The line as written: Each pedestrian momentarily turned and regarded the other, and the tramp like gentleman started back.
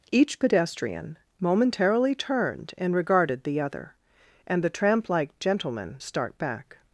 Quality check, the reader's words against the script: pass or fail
fail